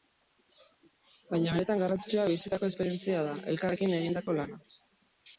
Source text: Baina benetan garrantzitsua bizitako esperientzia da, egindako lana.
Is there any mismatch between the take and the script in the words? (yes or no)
yes